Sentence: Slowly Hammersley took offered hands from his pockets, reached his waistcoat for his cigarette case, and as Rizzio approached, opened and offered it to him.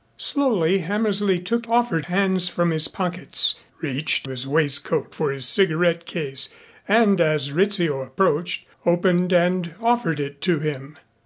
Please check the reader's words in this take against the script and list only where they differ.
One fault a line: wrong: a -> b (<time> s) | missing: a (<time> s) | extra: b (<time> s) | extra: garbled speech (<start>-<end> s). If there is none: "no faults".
no faults